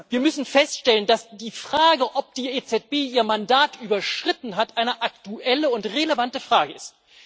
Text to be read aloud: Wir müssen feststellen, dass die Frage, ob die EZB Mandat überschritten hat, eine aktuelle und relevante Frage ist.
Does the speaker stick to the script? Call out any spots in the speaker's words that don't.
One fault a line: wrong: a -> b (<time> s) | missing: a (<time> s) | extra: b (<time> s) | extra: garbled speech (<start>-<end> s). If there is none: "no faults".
extra: ihr (2.9 s)